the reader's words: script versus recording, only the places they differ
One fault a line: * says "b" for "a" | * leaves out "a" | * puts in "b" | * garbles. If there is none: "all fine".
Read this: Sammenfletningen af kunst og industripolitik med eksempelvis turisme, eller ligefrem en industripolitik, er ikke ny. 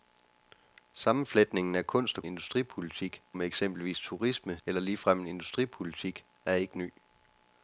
all fine